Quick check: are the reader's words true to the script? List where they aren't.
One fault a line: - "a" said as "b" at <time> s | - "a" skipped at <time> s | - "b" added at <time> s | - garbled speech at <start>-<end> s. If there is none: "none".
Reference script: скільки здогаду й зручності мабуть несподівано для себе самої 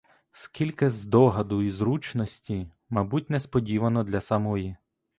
- "себе" skipped at 4.2 s